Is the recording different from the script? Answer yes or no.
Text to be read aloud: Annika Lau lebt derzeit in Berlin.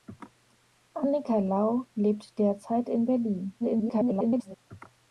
yes